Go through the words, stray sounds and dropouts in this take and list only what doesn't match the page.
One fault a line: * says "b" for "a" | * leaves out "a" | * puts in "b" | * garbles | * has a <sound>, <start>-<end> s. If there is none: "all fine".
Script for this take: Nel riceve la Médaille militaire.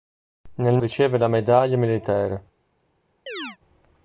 * has a chirp, 3.3-3.6 s